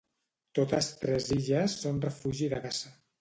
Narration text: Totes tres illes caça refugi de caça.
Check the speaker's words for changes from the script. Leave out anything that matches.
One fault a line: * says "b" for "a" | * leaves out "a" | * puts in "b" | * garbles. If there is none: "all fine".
* says "són" for "caça"